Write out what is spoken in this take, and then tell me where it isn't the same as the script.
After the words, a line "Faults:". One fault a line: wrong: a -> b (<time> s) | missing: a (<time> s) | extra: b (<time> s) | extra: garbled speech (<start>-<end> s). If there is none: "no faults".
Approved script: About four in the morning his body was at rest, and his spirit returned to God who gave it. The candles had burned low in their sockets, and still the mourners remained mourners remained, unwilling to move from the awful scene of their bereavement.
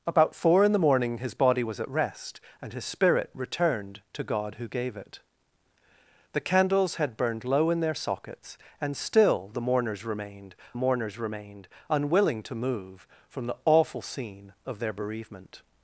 About four in the morning his body was at rest, and his spirit returned to God who gave it. The candles had burned low in their sockets, and still the mourners remained mourners remained, unwilling to move from the awful scene of their bereavement.
Faults:
no faults